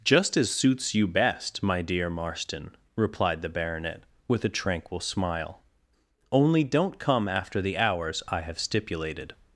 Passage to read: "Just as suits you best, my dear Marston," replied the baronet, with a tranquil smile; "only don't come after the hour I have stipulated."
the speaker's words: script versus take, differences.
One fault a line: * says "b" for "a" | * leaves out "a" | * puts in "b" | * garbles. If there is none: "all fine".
* says "hours" for "hour"